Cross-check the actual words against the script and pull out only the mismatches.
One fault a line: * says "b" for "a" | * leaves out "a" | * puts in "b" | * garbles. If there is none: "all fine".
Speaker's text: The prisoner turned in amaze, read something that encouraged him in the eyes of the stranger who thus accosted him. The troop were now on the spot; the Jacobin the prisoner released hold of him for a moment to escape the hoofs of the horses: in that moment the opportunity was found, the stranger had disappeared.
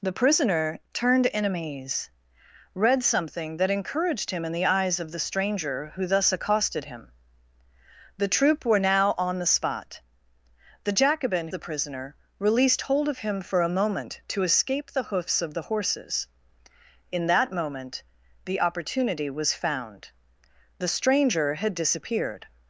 all fine